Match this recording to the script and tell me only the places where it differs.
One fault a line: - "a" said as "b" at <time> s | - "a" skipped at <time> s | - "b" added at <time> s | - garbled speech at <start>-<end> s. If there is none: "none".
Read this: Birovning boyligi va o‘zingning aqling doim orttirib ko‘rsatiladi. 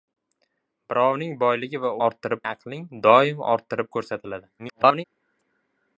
- "o‘zingning" said as "orttirib" at 2.1 s
- garbled speech at 4.6-5.0 s